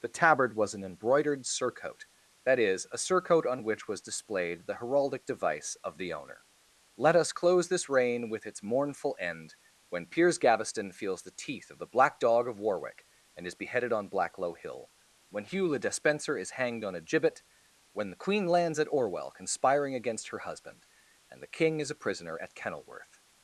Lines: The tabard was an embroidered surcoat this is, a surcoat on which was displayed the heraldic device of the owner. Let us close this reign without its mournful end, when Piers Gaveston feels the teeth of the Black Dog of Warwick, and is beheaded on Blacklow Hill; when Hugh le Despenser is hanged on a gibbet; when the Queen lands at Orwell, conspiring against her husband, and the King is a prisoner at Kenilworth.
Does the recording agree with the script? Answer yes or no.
no